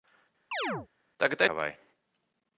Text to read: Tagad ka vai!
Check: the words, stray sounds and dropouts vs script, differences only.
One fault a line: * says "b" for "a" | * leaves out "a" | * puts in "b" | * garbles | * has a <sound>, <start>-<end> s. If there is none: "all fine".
* has a chirp, 0.5-0.9 s